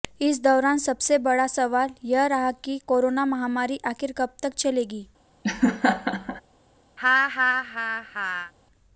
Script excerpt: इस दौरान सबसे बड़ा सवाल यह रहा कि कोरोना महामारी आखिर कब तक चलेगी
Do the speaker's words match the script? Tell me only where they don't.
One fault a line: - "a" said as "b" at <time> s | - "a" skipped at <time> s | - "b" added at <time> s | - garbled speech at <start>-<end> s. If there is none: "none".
none